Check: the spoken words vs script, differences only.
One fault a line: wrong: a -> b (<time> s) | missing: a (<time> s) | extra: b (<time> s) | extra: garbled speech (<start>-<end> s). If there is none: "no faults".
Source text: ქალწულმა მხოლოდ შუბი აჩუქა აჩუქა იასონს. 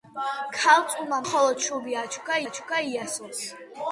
no faults